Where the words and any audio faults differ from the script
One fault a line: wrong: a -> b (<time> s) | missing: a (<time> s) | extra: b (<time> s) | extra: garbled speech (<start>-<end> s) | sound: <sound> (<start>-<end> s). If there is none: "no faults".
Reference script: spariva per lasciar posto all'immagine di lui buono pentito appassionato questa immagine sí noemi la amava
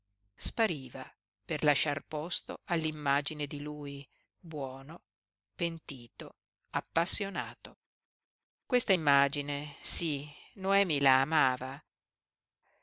no faults